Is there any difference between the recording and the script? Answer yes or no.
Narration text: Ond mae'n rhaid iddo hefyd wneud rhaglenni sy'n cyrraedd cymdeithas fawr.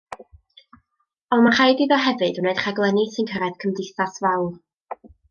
no